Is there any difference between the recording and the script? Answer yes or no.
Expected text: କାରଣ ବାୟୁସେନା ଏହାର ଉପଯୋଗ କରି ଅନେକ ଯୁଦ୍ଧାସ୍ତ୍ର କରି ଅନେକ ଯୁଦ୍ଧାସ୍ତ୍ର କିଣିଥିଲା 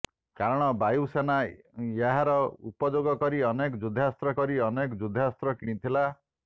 no